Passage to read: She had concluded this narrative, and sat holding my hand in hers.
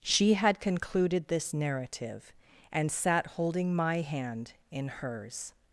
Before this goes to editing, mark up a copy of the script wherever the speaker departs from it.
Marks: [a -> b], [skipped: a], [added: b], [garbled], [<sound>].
She had concluded this narrative, and sat holding my hand in hers.